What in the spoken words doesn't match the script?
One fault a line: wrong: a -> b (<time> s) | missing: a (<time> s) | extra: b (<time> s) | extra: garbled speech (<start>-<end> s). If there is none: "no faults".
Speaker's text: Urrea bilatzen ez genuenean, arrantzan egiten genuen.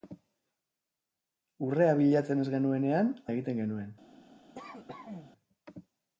missing: arrantzan (3.1 s)